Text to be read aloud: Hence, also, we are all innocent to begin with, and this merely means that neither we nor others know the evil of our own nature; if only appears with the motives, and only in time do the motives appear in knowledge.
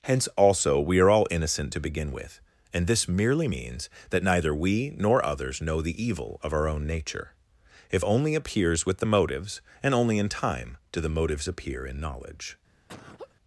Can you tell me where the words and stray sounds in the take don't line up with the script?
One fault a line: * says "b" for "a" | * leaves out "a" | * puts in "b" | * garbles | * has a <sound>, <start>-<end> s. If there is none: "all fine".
* has a laugh, 12.9-13.4 s